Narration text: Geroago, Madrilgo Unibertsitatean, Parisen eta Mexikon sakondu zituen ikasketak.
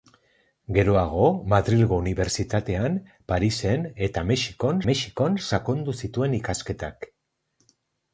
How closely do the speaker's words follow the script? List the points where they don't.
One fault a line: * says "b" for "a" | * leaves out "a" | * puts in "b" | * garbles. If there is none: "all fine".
* puts in "Mexikon"